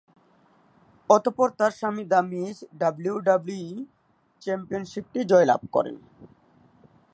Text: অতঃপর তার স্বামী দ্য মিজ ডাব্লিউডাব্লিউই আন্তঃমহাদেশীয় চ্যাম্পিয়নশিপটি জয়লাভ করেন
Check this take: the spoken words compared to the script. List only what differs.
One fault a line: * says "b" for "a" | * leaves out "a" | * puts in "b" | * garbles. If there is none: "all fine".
* leaves out "আন্তঃমহাদেশীয়"